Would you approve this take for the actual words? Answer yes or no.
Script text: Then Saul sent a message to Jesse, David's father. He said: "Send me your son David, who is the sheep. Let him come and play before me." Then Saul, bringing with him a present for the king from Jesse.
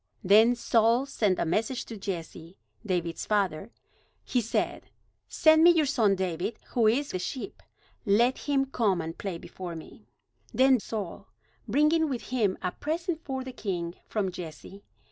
yes